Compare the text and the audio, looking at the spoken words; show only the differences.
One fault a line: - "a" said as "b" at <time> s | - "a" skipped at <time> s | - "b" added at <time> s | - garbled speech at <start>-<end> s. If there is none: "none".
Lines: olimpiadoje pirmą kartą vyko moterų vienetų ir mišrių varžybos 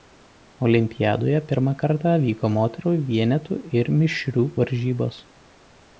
none